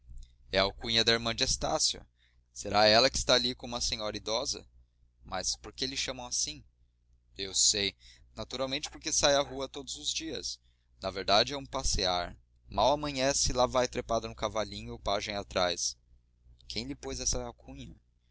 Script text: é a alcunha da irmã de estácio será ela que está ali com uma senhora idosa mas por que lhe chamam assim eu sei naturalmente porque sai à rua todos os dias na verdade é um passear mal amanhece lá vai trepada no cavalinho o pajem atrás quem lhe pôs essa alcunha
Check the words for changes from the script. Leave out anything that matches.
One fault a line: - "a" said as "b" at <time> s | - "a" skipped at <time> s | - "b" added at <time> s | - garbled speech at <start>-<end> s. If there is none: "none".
none